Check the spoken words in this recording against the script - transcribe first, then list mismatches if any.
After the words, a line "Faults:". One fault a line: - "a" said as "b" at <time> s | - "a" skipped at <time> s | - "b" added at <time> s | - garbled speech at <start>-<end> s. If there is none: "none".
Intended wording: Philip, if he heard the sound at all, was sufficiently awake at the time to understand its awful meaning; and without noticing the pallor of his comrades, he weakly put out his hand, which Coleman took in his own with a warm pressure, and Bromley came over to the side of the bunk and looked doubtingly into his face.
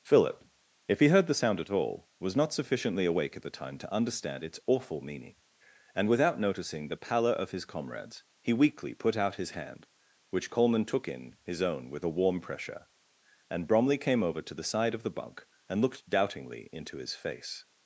Philip, if he heard the sound at all, was not sufficiently awake at the time to understand its awful meaning; and without noticing the pallor of his comrades, he weakly put out his hand, which Coleman took in his own with a warm pressure, and Bromley came over to the side of the bunk and looked doubtingly into his face.
Faults:
- "not" added at 2.4 s